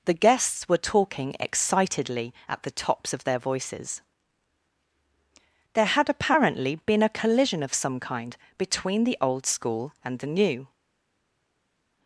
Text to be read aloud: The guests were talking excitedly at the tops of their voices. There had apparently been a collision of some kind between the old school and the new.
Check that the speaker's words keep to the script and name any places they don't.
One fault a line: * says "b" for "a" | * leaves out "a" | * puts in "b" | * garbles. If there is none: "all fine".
all fine